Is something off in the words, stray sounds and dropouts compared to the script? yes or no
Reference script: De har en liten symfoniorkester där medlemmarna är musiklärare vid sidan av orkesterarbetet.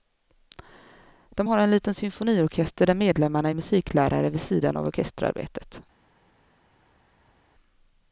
no